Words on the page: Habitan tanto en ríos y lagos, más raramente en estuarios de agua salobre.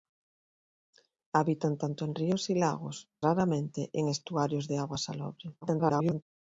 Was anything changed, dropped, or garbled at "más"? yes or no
yes